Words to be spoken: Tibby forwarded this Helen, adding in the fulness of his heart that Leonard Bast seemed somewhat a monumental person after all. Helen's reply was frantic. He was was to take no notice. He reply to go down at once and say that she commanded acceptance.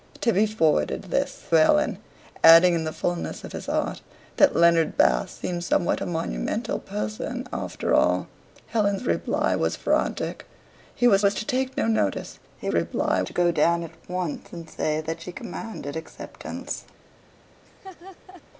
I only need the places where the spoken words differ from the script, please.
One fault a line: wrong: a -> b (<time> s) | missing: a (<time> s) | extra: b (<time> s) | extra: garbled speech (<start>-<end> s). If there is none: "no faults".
no faults